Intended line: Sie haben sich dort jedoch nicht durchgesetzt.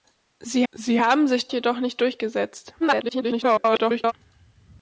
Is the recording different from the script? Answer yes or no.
yes